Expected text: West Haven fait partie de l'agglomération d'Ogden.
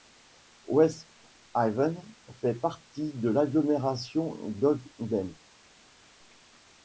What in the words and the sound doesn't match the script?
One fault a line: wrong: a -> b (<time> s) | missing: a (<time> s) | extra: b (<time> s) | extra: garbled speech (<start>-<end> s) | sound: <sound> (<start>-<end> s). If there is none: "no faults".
no faults